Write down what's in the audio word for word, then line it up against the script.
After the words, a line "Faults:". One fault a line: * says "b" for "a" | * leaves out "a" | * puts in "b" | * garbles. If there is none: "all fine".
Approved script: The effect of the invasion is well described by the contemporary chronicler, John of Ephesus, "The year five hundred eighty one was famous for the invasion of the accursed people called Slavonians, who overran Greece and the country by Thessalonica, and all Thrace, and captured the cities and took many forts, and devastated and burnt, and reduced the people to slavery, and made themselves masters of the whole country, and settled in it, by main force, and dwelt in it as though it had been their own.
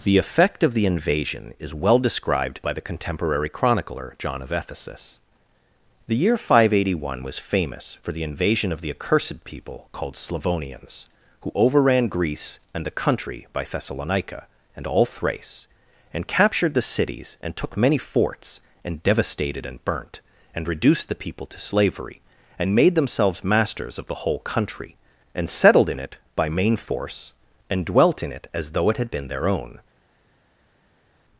The effect of the invasion is well described by the contemporary chronicler, John of Ephesus, "The year five hundred eighty one was famous for the invasion of the accursed people called Slavonians, who overran Greece and the country by Thessalonica, and all Thrace, and captured the cities and took many forts, and devastated and burnt, and reduced the people to slavery, and made themselves masters of the whole country, and settled in it, by main force, and dwelt in it as though it had been their own.
Faults:
all fine